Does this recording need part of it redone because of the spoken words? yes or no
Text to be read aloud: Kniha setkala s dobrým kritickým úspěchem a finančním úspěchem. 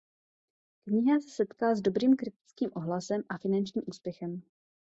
yes